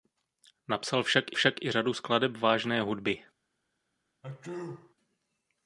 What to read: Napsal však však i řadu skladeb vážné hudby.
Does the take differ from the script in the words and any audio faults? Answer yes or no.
yes